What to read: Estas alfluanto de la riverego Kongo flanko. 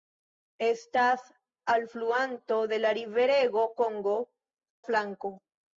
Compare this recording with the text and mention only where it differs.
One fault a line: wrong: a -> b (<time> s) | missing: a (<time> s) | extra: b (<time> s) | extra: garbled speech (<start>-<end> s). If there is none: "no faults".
no faults